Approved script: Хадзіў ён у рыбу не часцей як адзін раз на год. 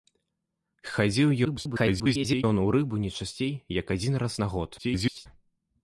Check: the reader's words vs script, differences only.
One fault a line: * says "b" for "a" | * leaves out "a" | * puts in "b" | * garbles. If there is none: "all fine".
* garbles
* garbles